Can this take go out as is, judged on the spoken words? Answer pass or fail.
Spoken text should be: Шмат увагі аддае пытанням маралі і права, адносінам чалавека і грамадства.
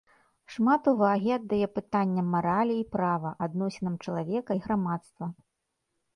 pass